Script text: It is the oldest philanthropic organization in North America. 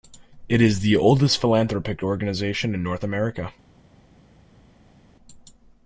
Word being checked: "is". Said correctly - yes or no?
yes